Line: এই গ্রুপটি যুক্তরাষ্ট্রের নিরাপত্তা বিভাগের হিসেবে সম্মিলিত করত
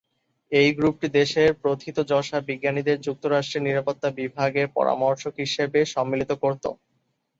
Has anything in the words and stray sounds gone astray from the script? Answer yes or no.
yes